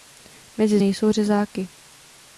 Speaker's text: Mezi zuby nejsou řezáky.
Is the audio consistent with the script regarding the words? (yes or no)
no